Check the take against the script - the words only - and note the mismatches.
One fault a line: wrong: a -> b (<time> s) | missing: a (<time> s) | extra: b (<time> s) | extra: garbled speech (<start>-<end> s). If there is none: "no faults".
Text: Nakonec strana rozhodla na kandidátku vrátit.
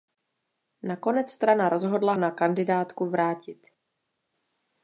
no faults